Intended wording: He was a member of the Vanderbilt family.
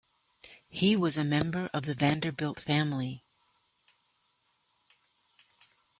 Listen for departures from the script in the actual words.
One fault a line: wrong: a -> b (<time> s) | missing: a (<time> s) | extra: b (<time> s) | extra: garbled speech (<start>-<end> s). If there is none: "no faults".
no faults